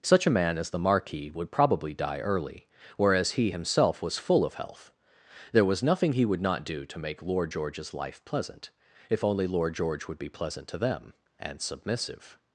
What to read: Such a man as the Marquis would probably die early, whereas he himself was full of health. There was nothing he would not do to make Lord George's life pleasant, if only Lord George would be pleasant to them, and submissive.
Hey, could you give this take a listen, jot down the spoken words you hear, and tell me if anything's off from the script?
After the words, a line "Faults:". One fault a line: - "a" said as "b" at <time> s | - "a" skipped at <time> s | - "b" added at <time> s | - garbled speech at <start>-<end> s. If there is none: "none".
Such a man as the Marquis would probably die early, whereas he himself was full of health. There was nothing he would not do to make Lord George's life pleasant, if only Lord George would be pleasant to them, and submissive.
Faults:
none